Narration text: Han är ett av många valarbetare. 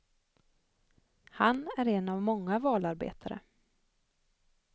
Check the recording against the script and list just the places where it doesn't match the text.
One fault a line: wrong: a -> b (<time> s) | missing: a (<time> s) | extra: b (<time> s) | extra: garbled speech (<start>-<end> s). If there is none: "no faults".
wrong: ett -> en (1.9 s)